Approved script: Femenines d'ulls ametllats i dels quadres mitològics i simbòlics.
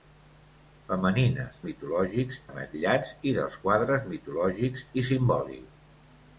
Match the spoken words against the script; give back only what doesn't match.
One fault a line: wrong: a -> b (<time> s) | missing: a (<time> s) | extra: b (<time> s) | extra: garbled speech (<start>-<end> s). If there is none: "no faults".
wrong: d'ulls -> mitològics (1.7 s)